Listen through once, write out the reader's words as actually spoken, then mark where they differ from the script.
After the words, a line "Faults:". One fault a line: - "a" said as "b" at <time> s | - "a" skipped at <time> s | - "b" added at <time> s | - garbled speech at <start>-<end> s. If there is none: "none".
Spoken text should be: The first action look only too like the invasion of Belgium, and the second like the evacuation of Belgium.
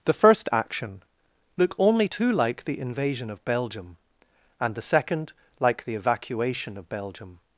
The first action look only too like the invasion of Belgium, and the second like the evacuation of Belgium.
Faults:
none